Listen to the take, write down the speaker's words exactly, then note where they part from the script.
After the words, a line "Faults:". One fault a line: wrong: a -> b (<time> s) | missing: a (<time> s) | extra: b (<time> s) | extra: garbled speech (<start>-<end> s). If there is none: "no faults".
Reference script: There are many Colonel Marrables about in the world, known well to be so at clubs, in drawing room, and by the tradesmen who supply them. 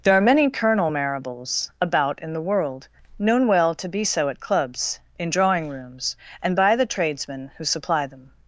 There are many Colonel Marrables about in the world, known well to be so at clubs, in drawing rooms, and by the tradesmen who supply them.
Faults:
wrong: room -> rooms (5.7 s)